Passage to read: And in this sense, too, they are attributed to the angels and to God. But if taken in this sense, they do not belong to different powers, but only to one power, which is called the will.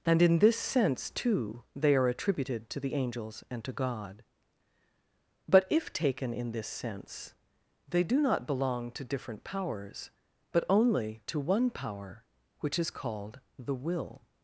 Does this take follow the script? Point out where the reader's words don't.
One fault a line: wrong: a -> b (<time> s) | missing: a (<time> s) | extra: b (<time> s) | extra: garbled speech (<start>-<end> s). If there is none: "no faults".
no faults